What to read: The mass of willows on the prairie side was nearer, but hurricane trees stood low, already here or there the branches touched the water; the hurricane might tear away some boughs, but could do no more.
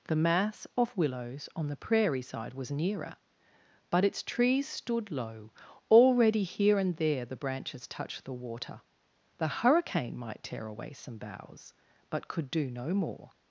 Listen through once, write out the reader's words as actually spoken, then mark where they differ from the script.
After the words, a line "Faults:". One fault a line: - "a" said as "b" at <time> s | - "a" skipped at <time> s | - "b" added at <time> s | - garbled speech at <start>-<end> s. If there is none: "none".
The mass of willows on the prairie side was nearer, but its trees stood low, already here and there the branches touched the water; the hurricane might tear away some boughs, but could do no more.
Faults:
- "hurricane" said as "its" at 4.0 s
- "or" said as "and" at 6.8 s